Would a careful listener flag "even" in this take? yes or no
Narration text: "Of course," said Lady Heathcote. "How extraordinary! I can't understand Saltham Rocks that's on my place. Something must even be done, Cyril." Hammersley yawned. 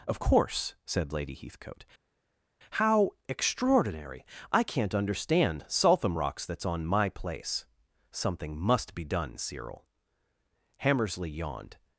yes